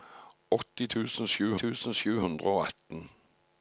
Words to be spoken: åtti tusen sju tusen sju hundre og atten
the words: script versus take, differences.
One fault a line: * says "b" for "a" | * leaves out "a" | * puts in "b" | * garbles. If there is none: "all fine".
all fine